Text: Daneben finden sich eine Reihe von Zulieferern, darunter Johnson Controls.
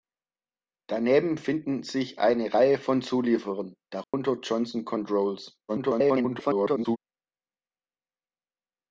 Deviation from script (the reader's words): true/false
true